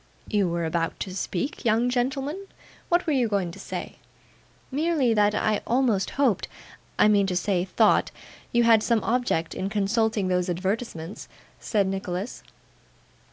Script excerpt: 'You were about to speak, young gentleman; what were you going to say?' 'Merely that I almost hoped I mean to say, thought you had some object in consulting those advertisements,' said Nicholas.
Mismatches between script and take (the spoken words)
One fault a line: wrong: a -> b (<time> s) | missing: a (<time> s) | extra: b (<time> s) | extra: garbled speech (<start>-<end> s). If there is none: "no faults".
no faults